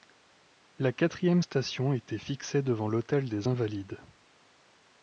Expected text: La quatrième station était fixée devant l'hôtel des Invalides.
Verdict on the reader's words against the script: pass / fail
pass